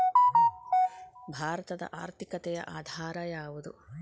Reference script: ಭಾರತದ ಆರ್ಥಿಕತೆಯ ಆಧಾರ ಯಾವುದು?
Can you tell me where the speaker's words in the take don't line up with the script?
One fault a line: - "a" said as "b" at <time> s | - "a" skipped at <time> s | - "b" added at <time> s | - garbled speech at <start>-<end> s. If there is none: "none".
none